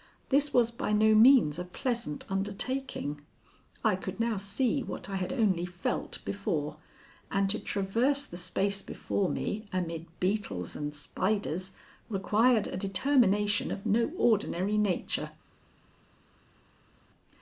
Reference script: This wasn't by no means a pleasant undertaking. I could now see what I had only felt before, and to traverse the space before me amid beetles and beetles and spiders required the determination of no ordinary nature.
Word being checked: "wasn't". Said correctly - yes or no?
no